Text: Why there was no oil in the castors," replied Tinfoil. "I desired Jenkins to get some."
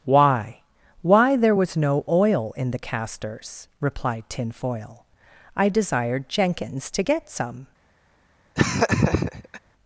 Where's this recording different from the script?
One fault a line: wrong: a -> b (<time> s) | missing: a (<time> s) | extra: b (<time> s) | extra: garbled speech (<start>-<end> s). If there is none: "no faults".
extra: why (1.0 s)